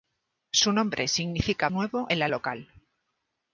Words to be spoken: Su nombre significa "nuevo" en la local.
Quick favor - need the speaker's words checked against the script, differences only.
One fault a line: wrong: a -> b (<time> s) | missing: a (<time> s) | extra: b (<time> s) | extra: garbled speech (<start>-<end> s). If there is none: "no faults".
no faults